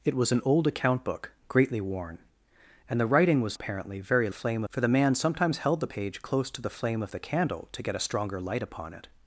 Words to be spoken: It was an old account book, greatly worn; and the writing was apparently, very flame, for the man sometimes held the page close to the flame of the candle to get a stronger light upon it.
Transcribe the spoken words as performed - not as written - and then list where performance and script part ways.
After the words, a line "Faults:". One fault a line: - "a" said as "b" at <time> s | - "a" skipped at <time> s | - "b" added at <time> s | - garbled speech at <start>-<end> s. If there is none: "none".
It was an old account book, greatly worn; and the writing was apparently, very flame, for the man sometimes held the page close to the flame of the candle to get a stronger light upon it.
Faults:
none